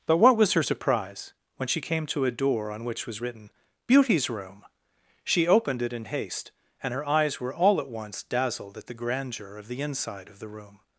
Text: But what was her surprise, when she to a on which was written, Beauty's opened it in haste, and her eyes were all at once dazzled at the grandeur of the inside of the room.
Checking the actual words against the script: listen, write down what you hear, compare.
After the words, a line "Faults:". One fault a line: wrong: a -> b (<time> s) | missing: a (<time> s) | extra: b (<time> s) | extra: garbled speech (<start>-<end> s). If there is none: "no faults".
But what was her surprise, when she came to a door on which was written, Beauty's room! She opened it in haste, and her eyes were all at once dazzled at the grandeur of the inside of the room.
Faults:
extra: came (1.8 s)
extra: door (2.3 s)
extra: room She (4.3 s)